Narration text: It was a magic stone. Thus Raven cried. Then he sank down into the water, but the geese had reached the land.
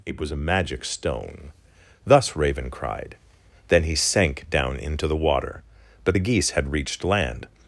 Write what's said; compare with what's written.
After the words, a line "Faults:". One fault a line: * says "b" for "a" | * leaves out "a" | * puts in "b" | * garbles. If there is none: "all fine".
It was a magic stone. Thus Raven cried. Then he sank down into the water, but the geese had reached land.
Faults:
* leaves out "the"